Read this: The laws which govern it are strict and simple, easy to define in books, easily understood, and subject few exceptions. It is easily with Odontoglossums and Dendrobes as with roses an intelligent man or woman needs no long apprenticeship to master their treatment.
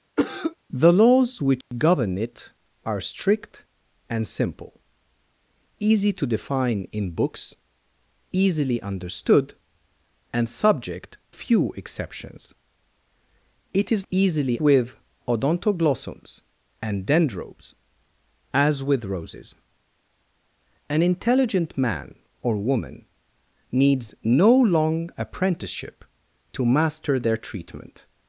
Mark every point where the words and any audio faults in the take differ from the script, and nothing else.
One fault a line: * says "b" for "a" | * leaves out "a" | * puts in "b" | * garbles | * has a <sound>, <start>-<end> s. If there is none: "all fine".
* has a cough, 0.2-0.6 s
* has a dropout, 1.6-1.7 s